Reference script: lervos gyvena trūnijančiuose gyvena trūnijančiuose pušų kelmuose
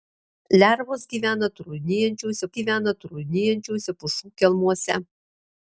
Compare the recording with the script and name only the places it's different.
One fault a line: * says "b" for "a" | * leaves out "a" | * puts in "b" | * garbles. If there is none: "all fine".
all fine